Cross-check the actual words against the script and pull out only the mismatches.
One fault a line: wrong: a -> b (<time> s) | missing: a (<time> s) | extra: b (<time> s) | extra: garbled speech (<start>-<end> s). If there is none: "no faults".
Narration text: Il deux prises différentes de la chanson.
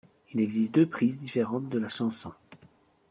extra: existe (0.4 s)